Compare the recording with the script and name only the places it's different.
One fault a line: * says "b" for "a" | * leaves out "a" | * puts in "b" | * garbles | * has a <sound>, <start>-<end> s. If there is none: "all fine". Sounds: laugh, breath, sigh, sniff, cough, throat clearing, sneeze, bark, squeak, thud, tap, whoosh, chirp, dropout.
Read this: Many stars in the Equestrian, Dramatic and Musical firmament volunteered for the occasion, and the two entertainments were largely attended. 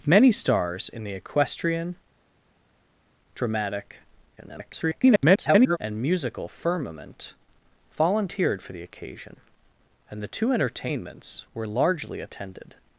* garbles